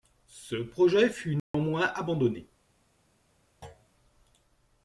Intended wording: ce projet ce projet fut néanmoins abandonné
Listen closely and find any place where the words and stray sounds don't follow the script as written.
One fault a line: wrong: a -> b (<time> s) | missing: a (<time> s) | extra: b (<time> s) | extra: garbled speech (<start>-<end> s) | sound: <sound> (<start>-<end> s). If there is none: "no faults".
missing: ce projet (1.1 s)
sound: dropout (1.4-1.5 s)
sound: thud (3.6-3.9 s)